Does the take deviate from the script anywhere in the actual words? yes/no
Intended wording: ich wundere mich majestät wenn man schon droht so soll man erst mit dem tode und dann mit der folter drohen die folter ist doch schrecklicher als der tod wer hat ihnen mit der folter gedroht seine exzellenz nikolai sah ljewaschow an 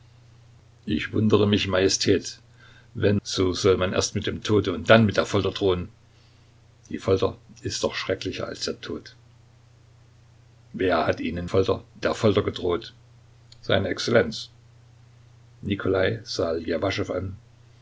yes